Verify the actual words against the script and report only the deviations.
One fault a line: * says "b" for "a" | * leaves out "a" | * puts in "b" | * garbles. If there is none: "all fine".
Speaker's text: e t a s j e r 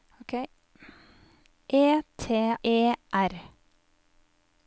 * leaves out "a s j"